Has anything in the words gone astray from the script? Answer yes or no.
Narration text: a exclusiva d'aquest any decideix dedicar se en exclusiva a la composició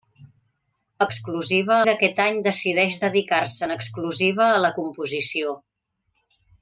no